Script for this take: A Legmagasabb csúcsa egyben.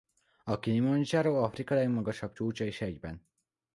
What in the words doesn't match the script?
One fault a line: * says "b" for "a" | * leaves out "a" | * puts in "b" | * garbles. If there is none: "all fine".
* puts in "Kilimandzsáró Afrika"
* puts in "is"